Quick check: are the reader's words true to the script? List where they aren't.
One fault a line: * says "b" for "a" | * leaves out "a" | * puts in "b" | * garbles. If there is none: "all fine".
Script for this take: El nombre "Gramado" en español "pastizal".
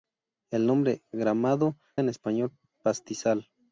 all fine